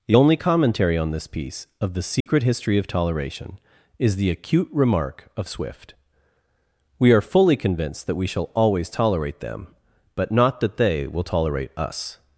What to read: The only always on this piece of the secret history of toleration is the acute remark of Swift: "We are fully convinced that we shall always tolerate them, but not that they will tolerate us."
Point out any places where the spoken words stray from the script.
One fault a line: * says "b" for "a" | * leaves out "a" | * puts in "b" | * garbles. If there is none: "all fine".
* says "commentary" for "always"